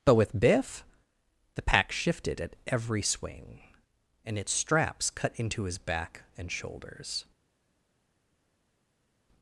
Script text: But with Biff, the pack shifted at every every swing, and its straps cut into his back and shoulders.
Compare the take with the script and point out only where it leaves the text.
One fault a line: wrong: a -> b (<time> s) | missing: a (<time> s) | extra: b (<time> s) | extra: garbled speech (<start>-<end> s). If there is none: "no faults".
missing: every (3.0 s)